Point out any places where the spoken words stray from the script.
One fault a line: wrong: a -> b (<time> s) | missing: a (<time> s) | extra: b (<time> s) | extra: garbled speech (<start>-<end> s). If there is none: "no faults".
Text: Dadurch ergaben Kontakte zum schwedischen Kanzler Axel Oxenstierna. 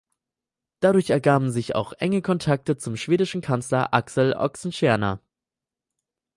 extra: sich auch enge (1.5 s)